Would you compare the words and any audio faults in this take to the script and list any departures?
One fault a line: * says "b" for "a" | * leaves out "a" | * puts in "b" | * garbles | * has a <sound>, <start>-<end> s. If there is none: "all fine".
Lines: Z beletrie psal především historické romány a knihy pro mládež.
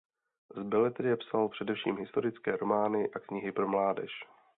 all fine